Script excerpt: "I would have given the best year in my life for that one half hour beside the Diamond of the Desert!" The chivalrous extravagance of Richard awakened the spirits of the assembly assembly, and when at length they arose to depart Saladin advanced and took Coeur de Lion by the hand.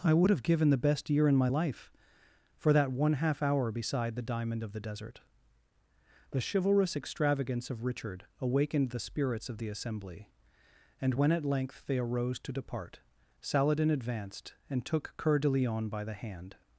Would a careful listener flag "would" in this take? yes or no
no